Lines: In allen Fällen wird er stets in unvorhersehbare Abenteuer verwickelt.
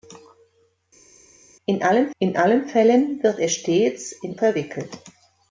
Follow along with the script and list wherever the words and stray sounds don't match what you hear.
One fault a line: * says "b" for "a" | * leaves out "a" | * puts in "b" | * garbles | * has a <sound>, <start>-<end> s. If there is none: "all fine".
* puts in "in allen"
* leaves out "unvorhersehbare Abenteuer"